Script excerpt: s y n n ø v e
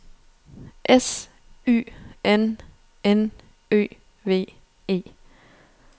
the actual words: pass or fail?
pass